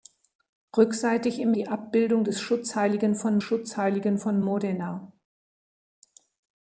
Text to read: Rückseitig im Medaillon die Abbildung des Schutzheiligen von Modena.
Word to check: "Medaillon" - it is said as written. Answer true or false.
false